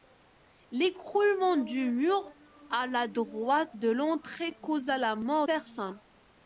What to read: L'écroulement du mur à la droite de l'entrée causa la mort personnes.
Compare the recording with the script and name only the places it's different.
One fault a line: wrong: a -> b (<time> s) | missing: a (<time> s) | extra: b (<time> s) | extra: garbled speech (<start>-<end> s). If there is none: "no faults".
no faults